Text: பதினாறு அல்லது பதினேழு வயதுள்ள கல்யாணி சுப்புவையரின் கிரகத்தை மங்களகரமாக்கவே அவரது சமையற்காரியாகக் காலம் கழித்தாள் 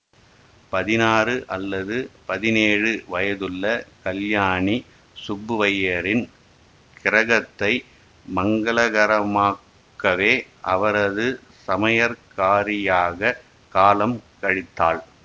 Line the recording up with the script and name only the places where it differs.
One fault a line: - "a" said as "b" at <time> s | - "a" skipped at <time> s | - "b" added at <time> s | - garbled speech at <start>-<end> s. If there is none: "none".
none